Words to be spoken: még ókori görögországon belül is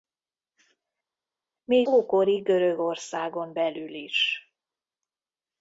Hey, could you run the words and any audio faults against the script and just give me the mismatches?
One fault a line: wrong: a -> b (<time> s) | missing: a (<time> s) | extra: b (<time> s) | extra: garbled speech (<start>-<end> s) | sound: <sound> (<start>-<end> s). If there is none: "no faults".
no faults